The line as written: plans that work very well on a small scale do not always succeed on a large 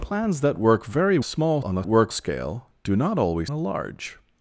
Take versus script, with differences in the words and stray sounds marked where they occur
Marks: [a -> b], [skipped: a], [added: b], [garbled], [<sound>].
plans that work very [well -> small] on a [small -> work] scale do not always [skipped: succeed on] a large